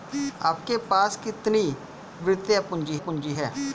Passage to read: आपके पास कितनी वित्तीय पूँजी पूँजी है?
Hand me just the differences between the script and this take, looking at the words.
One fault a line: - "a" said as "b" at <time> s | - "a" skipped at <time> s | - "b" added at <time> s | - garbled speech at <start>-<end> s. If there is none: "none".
none